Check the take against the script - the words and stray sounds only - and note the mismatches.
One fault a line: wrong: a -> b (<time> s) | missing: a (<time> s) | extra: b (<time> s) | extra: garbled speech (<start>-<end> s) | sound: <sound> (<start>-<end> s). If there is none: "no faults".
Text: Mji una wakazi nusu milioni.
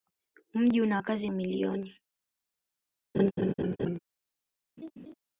missing: nusu (1.3 s)
sound: laugh (3.1-4.0 s)
sound: laugh (4.8-5.1 s)